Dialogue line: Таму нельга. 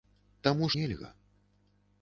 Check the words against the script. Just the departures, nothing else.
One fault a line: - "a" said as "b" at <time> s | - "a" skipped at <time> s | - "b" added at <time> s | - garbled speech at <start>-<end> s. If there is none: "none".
none